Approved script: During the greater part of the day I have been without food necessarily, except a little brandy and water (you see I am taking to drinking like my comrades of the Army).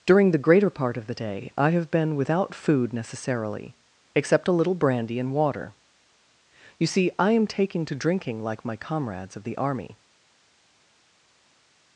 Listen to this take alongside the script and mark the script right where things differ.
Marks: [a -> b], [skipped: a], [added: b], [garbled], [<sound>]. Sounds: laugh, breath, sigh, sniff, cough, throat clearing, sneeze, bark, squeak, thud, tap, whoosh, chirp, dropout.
During the greater part of the day I have been without food necessarily, except a little brandy and water (you see I am taking to drinking like my comrades of the Army).